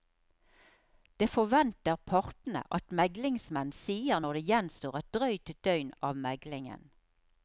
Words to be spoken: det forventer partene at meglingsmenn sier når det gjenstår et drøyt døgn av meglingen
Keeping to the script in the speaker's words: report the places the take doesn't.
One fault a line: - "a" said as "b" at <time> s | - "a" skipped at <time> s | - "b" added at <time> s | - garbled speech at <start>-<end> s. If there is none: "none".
none